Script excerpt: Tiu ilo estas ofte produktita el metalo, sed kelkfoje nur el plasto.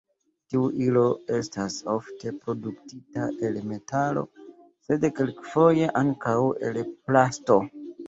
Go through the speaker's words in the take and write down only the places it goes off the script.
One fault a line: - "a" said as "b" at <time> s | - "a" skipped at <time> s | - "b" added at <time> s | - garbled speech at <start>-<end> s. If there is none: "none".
- "nur" said as "ankaŭ" at 6.1 s